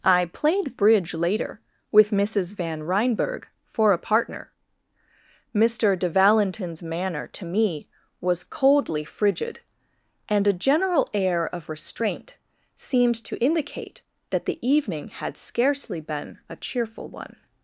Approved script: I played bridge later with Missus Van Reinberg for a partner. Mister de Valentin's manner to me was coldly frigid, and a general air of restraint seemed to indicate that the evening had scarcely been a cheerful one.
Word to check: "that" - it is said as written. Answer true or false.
true